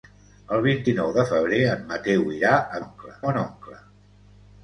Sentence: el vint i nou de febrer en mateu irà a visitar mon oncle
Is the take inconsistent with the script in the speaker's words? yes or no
yes